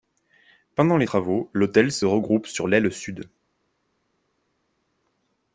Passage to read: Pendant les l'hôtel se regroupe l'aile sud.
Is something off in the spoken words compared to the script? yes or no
yes